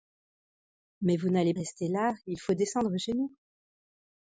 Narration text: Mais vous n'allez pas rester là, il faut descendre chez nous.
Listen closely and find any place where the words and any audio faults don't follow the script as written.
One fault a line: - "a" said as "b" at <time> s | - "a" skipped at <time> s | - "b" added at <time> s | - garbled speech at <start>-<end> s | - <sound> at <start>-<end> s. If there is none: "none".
- "pas" skipped at 1.5 s